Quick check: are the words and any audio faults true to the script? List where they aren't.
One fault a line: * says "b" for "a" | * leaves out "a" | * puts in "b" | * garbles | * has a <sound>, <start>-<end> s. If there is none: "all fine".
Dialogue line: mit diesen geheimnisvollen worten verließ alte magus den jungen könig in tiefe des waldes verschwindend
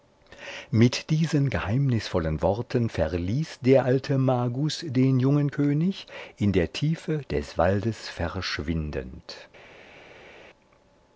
* puts in "der"
* puts in "der"